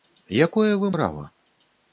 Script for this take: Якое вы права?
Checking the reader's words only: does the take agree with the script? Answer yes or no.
yes